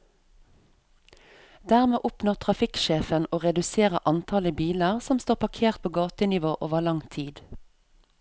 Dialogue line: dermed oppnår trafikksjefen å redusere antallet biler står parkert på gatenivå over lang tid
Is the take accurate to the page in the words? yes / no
no